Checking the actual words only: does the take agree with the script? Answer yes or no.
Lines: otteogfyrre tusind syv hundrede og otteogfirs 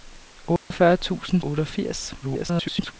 no